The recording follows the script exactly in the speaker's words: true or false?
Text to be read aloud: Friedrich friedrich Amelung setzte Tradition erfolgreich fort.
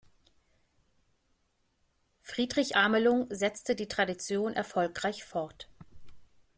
false